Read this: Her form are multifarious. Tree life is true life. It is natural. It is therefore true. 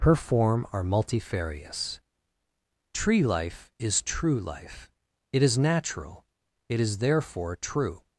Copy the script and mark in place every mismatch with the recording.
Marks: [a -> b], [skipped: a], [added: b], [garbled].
Her form are multifarious. Tree life is true life. It is natural. It is therefore true.